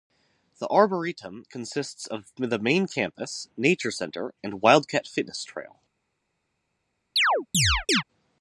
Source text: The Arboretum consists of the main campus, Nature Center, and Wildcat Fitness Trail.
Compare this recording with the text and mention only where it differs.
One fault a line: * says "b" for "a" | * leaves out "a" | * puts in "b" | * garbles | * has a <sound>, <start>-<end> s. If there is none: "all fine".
* has a chirp, 7.2-8.0 s